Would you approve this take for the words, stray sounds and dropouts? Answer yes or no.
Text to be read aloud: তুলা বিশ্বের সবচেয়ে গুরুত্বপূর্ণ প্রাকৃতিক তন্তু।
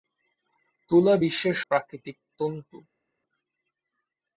no